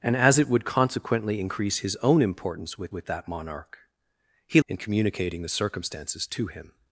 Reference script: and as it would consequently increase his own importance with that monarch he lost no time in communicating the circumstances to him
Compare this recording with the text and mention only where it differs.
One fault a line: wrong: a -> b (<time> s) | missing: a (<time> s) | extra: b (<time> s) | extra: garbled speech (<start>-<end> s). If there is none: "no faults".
extra: with (2.9 s)
missing: lost no time (4.6 s)